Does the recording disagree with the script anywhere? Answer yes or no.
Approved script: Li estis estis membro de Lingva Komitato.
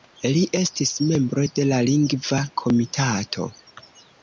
yes